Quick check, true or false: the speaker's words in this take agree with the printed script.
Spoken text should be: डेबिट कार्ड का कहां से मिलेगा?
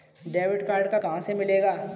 true